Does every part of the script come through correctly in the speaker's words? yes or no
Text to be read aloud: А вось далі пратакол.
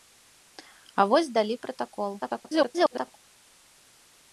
no